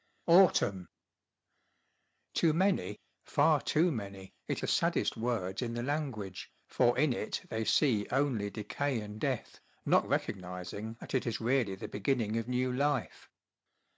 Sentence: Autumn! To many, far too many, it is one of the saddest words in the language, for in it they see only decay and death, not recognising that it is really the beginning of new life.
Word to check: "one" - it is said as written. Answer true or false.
false